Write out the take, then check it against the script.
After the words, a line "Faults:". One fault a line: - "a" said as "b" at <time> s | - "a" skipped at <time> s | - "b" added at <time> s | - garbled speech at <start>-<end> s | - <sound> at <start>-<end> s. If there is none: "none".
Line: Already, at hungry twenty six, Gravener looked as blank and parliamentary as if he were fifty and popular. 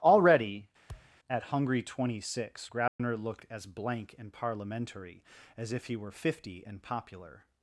Already, at hungry twenty six, Gravener looked as blank and parliamentary as if he were fifty and popular.
Faults:
- thud at 0.9-1.2 s
- dropout at 2.9-3.0 s